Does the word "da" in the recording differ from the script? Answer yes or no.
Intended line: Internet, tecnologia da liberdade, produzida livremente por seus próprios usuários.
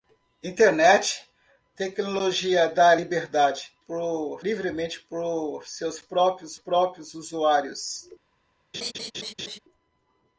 no